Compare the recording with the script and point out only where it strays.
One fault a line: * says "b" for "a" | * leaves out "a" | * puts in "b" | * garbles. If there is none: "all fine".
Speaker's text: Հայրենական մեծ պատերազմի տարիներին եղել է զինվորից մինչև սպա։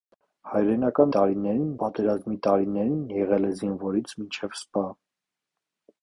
* says "տարիներին" for "մեծ"